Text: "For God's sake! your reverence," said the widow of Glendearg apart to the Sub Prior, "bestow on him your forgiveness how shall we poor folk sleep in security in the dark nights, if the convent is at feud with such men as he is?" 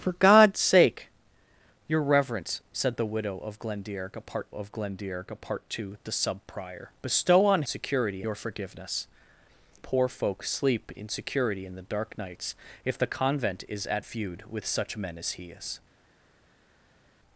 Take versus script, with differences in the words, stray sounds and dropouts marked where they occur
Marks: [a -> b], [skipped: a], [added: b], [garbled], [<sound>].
"For God's sake! your reverence," said the widow of Glendearg apart [added: of Glendearg apart] to the Sub Prior, "bestow on [him -> security] your forgiveness [skipped: how shall we] poor folk sleep in security in the dark nights, if the convent is at feud with such men as he is?"